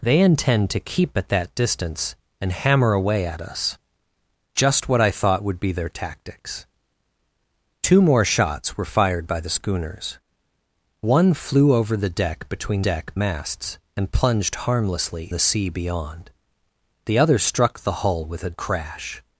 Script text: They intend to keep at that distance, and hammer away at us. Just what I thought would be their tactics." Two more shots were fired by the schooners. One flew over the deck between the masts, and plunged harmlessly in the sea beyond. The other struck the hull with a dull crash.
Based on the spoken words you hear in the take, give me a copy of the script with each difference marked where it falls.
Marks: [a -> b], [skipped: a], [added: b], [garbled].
They intend to keep at that distance, and hammer away at us. Just what I thought would be their tactics." Two more shots were fired by the schooners. One flew over the deck between [the -> deck] masts, and plunged harmlessly [skipped: in] the sea beyond. The other struck the hull with a [skipped: dull] crash.